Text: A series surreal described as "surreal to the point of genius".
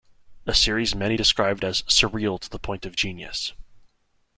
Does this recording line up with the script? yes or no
no